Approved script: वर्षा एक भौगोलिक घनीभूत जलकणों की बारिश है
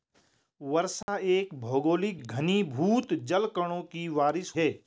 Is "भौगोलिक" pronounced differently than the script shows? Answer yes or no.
no